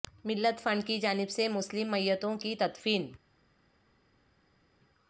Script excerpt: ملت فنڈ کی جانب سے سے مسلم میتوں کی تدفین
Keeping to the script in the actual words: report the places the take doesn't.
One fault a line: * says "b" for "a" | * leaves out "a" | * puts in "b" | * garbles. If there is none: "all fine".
* leaves out "سے"